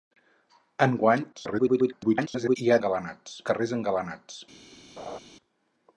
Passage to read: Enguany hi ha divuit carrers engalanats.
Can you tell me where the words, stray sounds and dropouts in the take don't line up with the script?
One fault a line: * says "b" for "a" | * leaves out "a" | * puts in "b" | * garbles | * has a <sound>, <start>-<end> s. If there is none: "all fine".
* garbles
* says "engalanats" for "divuit"
* has a laugh, 5.0-5.2 s